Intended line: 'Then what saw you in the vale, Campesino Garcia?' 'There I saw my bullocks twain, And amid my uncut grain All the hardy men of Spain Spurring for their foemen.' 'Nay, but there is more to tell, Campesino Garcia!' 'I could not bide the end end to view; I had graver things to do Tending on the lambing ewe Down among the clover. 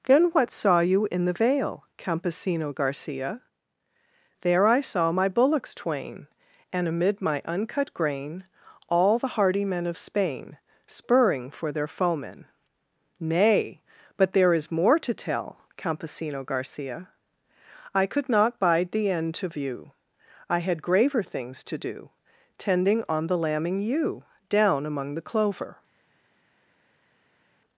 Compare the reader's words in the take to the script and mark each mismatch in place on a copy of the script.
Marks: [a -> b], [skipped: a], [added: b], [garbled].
'Then what saw you in the vale, Campesino Garcia?' 'There I saw my bullocks twain, And amid my uncut grain All the hardy men of Spain Spurring for their foemen.' 'Nay, but there is more to tell, Campesino Garcia!' 'I could not bide the end [skipped: end] to view; I had graver things to do Tending on the lambing ewe Down among the clover.